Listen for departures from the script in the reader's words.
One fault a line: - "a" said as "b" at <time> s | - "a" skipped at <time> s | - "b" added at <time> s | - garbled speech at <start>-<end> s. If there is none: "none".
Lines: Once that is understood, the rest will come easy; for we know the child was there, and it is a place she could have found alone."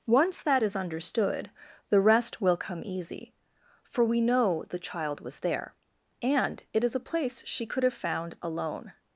none